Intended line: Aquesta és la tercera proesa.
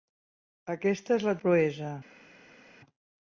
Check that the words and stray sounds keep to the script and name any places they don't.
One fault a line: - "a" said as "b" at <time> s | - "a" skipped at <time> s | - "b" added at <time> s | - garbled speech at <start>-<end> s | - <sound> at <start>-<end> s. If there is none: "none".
- "tercera" skipped at 1.4 s